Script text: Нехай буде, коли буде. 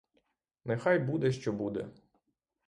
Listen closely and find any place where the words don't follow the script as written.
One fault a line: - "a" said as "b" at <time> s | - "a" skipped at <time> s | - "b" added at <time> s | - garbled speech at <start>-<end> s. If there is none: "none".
- "коли" said as "що" at 1.3 s